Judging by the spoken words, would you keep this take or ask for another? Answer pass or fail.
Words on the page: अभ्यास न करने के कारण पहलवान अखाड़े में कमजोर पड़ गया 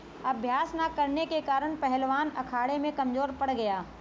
pass